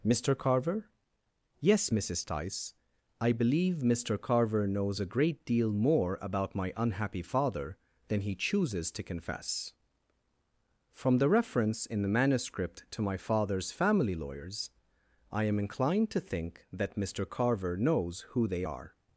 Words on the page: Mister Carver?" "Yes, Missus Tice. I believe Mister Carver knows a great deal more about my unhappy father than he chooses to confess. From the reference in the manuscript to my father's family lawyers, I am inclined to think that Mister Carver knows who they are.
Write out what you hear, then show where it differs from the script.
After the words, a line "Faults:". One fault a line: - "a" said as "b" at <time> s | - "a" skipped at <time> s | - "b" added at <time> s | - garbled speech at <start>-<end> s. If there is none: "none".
Mister Carver?" "Yes, Missus Tice. I believe Mister Carver knows a great deal more about my unhappy father than he chooses to confess. From the reference in the manuscript to my father's family lawyers, I am inclined to think that Mister Carver knows who they are.
Faults:
none